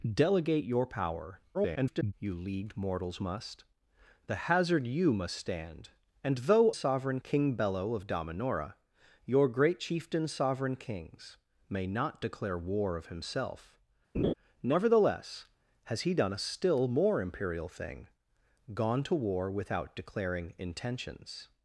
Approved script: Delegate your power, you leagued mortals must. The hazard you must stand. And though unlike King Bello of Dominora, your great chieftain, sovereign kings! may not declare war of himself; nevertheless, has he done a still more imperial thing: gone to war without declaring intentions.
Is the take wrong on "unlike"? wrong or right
wrong